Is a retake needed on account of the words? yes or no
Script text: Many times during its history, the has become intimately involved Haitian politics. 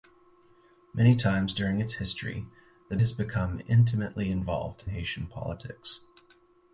no